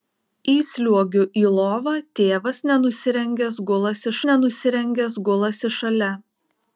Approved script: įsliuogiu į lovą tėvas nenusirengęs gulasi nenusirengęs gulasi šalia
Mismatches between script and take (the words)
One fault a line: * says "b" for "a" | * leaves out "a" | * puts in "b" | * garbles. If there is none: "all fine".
all fine